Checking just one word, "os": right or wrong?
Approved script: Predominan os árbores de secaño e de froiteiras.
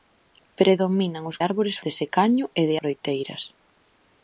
right